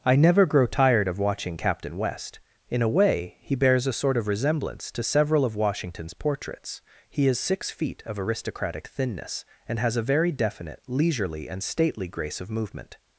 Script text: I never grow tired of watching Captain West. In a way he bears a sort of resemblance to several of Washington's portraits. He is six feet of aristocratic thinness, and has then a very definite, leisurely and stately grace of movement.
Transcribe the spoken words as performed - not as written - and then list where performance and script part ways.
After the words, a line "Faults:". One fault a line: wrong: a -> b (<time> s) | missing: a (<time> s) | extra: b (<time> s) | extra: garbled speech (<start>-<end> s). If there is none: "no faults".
I never grow tired of watching Captain West. In a way he bears a sort of resemblance to several of Washington's portraits. He is six feet of aristocratic thinness, and has a very definite, leisurely and stately grace of movement.
Faults:
missing: then (10.0 s)